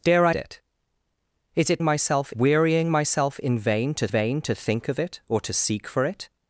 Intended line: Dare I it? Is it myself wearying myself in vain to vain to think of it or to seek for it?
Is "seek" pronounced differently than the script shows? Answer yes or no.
no